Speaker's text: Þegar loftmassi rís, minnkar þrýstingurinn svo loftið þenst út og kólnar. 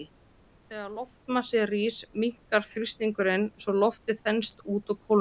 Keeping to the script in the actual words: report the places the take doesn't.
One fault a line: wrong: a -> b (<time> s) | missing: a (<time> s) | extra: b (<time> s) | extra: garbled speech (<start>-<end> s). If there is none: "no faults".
no faults